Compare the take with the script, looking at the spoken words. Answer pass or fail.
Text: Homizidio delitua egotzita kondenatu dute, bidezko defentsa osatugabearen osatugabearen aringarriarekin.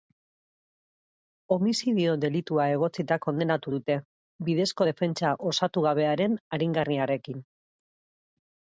fail